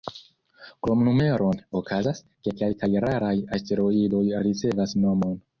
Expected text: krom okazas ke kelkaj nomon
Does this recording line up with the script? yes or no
no